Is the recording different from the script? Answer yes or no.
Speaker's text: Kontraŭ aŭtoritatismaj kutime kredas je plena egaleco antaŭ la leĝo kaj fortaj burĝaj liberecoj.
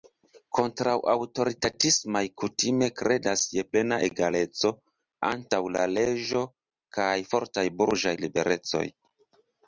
no